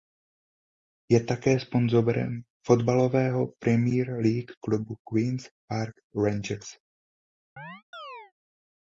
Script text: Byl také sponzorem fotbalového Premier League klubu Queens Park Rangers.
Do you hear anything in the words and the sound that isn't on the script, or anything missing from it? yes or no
yes